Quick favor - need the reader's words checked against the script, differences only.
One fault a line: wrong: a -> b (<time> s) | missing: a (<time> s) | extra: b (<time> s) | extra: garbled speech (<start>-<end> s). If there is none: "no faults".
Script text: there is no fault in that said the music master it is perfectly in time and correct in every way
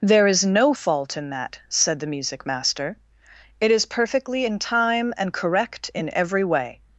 no faults